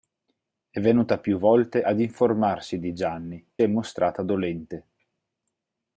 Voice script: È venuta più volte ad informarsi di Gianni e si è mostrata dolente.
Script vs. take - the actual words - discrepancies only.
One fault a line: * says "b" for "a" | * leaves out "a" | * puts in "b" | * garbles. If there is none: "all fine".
* leaves out "e si"